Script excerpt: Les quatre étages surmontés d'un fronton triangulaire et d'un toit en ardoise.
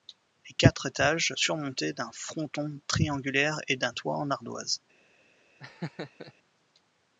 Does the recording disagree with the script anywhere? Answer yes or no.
no